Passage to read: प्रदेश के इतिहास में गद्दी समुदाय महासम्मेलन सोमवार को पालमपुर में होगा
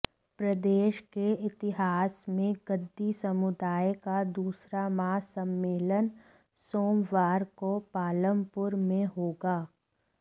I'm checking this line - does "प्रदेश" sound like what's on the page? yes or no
yes